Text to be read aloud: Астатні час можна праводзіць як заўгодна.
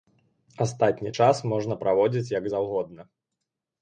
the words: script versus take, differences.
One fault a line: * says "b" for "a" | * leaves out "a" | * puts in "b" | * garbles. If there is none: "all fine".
all fine